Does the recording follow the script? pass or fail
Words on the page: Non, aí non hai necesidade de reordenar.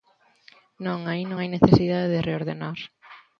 pass